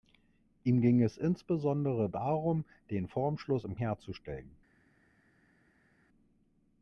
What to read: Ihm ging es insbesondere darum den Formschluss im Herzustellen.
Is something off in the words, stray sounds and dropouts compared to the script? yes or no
no